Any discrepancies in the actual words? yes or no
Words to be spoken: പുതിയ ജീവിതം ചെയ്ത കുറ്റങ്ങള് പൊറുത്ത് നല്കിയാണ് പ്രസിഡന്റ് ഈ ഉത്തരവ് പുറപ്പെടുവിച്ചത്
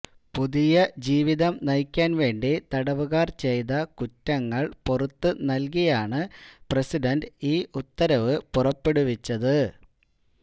yes